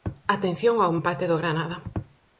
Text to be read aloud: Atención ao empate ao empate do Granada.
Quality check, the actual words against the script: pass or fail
fail